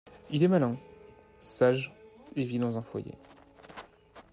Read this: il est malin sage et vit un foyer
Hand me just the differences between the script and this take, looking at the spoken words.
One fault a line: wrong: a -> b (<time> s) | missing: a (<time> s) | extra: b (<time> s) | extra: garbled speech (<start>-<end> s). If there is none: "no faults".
extra: dans (2.6 s)